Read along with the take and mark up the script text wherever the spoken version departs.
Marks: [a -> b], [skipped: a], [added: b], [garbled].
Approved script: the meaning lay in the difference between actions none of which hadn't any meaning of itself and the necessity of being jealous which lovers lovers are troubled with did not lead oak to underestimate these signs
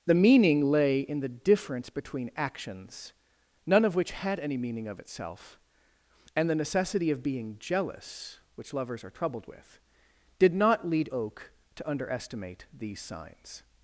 the meaning lay in the difference between actions none of which [hadn't -> had] any meaning of itself and the necessity of being jealous which lovers [skipped: lovers] are troubled with did not lead oak to underestimate these signs